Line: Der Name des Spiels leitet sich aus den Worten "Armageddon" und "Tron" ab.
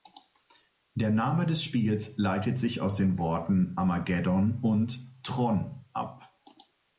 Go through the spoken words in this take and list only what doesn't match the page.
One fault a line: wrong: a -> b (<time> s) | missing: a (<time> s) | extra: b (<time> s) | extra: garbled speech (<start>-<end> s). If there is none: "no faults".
no faults